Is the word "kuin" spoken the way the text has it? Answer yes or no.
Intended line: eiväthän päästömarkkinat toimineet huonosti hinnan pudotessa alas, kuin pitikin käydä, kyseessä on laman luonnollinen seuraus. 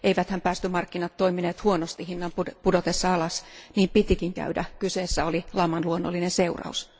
no